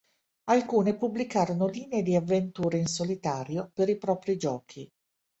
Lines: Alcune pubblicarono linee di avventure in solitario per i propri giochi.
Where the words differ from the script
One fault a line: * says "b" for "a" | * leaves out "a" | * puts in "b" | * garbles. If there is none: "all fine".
all fine